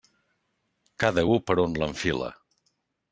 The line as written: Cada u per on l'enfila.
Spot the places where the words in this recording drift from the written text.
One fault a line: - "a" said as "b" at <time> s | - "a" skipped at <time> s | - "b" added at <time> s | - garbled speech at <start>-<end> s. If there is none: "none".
none